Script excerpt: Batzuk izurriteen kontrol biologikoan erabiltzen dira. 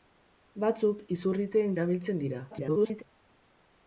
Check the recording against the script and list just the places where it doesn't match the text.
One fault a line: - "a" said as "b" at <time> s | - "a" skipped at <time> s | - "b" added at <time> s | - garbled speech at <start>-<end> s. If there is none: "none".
- "kontrol biologikoan" skipped at 1.8 s
- garbled speech at 2.5-3.0 s